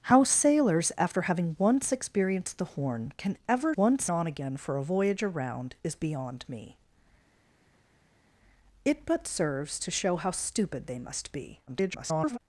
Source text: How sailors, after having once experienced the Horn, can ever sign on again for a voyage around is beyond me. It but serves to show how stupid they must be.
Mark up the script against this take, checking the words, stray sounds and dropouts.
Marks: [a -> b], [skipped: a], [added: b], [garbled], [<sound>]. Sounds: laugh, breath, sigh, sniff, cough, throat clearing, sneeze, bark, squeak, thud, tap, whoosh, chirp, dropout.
How sailors, after having once experienced the Horn, can ever [sign -> once] on again for a voyage around is beyond me. It but serves to show how stupid they must be. [garbled]